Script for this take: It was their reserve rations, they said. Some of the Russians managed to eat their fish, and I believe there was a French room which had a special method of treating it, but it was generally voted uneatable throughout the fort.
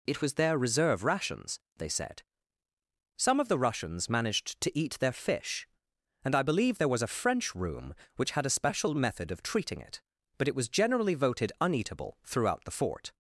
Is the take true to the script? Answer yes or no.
yes